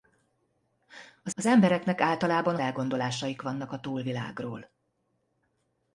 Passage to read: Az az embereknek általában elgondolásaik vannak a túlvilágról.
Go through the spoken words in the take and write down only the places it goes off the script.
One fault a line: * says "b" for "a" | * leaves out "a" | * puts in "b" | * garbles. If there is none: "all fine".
all fine